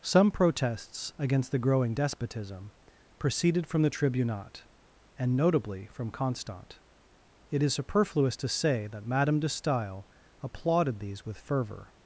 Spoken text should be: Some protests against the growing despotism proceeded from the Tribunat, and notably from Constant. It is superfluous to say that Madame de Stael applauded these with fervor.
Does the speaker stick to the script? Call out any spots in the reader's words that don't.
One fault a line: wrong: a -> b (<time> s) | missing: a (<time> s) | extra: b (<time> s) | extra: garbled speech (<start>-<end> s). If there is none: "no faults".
no faults